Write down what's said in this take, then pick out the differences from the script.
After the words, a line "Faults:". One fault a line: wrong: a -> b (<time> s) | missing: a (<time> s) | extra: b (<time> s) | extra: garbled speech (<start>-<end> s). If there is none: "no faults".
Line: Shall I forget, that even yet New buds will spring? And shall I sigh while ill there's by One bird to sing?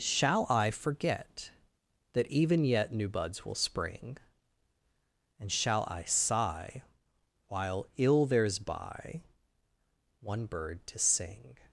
Shall I forget, that even yet New buds will spring? And shall I sigh while ill there's by One bird to sing?
Faults:
no faults